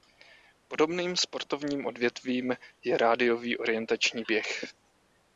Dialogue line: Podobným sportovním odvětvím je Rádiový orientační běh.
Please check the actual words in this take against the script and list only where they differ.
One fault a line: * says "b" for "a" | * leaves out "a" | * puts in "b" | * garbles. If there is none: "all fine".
all fine